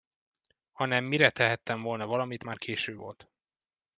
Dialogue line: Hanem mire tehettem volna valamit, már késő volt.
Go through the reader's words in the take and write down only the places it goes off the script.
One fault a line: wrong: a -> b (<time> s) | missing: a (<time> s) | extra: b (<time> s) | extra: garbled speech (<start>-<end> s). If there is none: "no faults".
no faults